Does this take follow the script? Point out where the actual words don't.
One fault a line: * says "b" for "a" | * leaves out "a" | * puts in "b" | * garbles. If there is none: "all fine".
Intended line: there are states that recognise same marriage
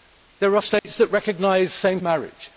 all fine